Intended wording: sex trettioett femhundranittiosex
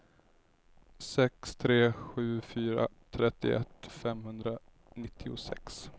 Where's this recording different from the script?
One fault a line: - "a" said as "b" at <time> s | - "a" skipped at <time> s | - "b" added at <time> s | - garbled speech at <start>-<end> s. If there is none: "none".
- "tre sju fyra" added at 1.6 s